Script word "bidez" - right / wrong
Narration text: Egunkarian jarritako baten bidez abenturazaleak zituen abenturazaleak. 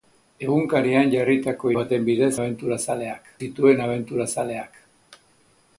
right